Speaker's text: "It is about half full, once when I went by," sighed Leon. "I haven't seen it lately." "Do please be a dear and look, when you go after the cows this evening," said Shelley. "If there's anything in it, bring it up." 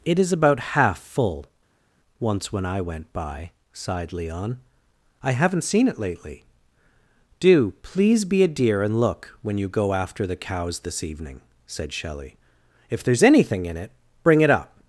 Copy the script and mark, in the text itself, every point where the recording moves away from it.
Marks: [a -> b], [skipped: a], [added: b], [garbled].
"It is about half full, once when I went by," sighed Leon. "I haven't seen it lately." "Do please be a dear and look, when you go after the cows this evening," said Shelley. "If there's anything in it, bring it up."